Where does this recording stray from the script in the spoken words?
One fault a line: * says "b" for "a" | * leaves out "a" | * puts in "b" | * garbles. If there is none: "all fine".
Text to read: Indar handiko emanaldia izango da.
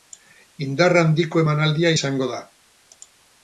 all fine